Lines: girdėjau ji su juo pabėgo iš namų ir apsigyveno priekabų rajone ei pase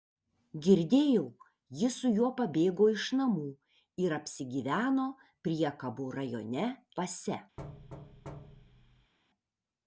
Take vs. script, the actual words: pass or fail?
fail